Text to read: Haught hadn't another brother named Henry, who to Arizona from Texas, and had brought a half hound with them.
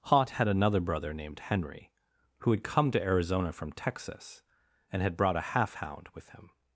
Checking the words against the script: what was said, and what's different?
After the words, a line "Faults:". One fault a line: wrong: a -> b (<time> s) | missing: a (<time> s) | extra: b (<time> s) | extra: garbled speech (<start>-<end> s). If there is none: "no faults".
Haught had another brother named Henry, who had come to Arizona from Texas, and had brought a half hound with him.
Faults:
wrong: hadn't -> had (0.3 s)
extra: had come (2.5 s)
wrong: them -> him (6.3 s)